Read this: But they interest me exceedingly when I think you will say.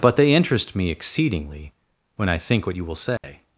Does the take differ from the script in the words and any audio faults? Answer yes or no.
yes